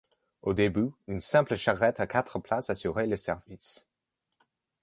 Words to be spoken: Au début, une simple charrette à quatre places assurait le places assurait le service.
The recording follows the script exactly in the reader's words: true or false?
false